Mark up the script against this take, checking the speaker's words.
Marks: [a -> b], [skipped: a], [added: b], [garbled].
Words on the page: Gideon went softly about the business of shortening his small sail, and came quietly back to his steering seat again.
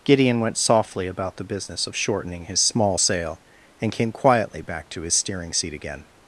Gideon went softly about the business of shortening his small sail, and came quietly back to his steering seat again.